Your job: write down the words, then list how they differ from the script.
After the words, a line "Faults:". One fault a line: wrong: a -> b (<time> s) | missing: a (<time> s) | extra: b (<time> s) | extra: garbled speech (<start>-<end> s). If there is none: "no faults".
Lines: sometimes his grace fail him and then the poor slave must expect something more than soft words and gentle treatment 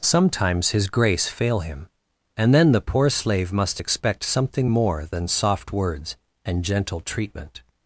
sometimes his grace fail him and then the poor slave must expect something more than soft words and gentle treatment
Faults:
no faults